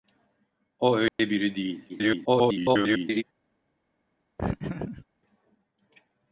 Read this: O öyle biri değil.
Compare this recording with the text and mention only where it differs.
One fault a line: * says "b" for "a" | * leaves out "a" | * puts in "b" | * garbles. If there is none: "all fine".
* garbles